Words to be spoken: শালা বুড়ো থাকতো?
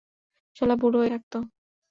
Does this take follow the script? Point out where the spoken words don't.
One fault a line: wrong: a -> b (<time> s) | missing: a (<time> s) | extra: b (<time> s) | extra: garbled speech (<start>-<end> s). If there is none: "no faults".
no faults